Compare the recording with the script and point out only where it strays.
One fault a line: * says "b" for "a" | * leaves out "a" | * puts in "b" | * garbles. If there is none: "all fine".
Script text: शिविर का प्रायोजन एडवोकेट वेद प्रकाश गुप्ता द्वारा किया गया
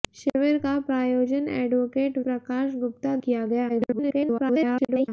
* leaves out "वेद"
* leaves out "द्वारा"
* garbles